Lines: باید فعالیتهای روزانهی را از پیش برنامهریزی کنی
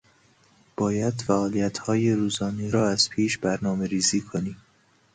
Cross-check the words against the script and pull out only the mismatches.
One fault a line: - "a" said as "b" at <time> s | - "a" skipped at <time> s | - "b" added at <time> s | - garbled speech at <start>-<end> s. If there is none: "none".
none